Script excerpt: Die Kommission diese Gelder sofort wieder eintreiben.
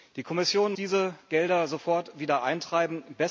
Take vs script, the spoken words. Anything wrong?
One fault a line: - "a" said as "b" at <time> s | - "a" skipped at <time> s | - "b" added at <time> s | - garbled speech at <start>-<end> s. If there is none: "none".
none